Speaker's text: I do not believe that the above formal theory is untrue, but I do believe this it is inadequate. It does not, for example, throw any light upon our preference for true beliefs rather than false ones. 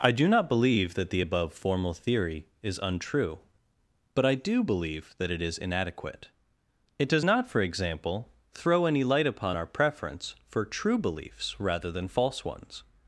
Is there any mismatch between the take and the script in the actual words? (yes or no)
yes